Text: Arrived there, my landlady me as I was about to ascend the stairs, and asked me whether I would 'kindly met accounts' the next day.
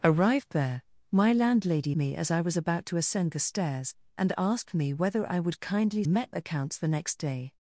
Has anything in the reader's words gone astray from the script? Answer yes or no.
no